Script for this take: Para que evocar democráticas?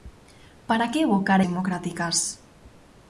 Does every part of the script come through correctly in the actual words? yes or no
yes